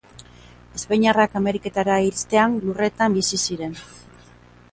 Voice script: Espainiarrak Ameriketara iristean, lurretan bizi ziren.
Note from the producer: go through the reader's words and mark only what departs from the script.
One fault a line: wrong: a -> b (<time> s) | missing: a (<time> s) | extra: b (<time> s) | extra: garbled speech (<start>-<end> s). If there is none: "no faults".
no faults